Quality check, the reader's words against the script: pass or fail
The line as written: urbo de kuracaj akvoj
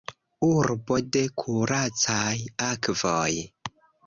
pass